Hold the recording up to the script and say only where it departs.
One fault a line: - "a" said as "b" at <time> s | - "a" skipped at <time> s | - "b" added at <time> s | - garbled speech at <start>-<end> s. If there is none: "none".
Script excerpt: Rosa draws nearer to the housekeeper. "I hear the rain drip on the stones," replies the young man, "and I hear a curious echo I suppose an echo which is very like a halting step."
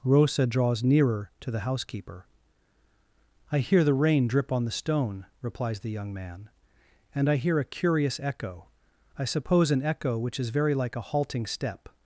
- "stones" said as "stone" at 4.7 s